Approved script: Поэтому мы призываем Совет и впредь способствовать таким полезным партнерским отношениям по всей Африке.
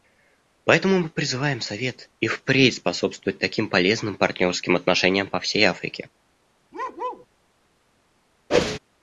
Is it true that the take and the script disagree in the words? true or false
false